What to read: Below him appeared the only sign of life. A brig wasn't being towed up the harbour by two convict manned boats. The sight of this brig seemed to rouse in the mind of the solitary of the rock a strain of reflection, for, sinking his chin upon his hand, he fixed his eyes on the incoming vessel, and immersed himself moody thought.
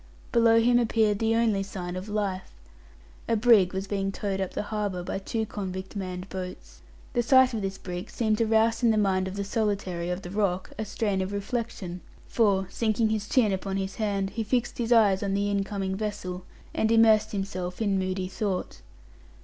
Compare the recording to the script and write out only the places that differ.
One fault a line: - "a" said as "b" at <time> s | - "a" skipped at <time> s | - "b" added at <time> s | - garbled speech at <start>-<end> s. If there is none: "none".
- "wasn't" said as "was" at 3.7 s
- "in" added at 17.8 s